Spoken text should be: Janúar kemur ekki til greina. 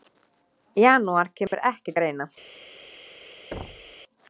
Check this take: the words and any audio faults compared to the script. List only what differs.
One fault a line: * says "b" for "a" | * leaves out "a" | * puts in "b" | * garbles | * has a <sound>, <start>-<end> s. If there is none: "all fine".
* has a dropout, 1.5-1.5 s
* leaves out "til"
* has a thud, 3.5-4.0 s